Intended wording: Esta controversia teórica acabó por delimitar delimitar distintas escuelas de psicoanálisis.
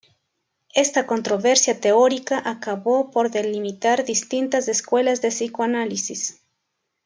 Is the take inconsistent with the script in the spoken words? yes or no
yes